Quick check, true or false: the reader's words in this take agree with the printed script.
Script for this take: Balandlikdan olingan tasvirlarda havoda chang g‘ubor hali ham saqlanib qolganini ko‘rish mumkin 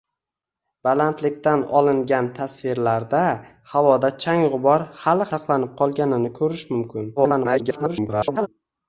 false